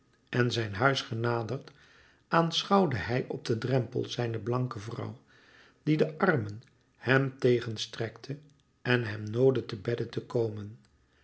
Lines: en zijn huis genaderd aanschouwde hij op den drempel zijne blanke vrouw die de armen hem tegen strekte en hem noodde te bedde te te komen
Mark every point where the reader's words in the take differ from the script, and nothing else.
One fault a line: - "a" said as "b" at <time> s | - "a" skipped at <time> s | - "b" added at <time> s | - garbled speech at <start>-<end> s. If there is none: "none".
- "te" skipped at 10.2 s